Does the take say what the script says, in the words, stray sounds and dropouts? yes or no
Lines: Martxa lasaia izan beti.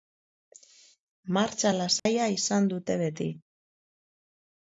no